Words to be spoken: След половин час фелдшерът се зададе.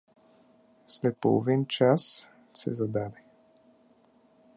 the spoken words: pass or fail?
fail